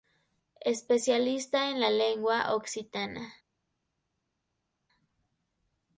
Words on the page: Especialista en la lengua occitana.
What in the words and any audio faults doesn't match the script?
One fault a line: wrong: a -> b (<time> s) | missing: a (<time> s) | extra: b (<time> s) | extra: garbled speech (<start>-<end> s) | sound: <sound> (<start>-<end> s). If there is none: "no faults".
no faults